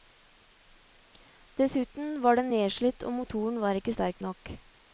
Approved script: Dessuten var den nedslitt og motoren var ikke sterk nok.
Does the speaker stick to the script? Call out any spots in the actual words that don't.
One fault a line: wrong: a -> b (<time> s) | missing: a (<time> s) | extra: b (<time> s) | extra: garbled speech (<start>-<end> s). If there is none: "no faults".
no faults